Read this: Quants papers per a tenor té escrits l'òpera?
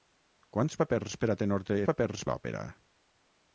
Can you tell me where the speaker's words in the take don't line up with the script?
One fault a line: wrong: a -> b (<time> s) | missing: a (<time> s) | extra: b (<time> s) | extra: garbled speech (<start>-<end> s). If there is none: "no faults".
wrong: escrits -> papers (1.9 s)